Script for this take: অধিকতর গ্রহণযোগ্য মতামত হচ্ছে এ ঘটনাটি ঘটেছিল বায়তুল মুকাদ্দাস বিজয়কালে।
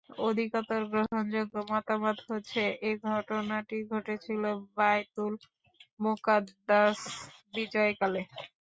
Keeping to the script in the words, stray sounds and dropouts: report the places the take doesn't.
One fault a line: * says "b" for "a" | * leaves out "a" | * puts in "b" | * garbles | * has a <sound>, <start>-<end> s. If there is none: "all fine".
all fine